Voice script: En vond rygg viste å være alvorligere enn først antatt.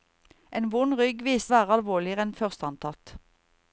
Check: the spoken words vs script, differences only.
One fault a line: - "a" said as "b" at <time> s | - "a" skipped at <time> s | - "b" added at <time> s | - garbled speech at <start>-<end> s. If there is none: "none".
none